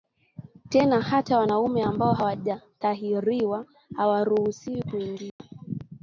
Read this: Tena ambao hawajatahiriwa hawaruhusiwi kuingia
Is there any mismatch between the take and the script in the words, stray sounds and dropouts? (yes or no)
yes